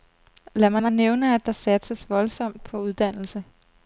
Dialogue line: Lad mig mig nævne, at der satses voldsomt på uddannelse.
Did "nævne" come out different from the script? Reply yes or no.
no